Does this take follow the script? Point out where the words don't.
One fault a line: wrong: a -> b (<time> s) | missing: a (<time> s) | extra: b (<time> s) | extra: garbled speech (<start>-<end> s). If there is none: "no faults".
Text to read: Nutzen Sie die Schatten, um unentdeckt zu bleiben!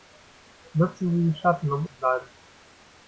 missing: unentdeckt (1.9 s)